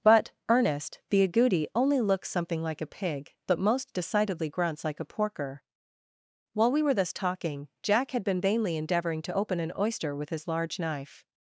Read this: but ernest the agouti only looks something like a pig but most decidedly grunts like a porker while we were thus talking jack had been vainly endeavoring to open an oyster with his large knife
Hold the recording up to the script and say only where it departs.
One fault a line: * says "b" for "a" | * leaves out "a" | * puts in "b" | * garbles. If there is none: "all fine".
all fine